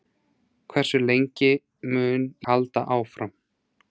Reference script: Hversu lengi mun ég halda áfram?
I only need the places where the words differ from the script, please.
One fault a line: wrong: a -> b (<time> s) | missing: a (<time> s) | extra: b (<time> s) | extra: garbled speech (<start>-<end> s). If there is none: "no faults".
missing: ég (2.2 s)